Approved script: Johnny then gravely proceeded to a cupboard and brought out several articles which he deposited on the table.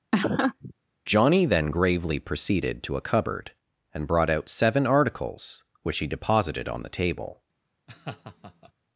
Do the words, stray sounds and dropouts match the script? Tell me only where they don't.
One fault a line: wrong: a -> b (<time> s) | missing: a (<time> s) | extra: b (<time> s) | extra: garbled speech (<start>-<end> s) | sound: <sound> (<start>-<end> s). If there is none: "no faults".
sound: laugh (0.1-0.7 s)
wrong: several -> seven (4.5 s)
sound: laugh (7.9-8.7 s)